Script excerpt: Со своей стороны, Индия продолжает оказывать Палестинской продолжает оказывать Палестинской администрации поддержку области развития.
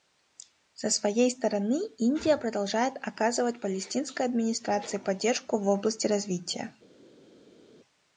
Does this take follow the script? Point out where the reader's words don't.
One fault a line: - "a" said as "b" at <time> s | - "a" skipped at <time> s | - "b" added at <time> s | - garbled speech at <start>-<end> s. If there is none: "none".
- "продолжает оказывать Палестинской" skipped at 4.3 s
- "в" added at 5.6 s